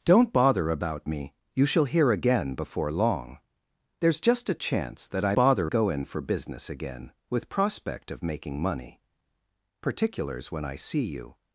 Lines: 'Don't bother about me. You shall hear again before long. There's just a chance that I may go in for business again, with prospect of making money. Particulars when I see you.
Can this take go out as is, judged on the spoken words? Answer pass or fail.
fail